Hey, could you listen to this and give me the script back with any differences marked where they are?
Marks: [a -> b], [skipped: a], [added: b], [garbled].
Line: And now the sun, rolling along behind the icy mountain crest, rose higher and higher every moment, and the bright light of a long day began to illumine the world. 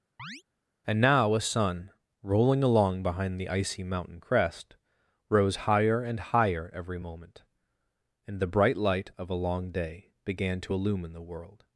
And now [the -> a] sun, rolling along behind the icy mountain crest, rose higher and higher every moment, and the bright light of a long day began to illumine the world.